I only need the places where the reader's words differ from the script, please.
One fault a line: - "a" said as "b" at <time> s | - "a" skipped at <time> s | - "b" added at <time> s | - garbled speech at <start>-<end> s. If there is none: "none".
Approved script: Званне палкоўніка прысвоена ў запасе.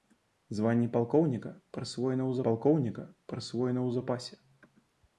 - "палкоўніка прысвоена ў" added at 2.5 s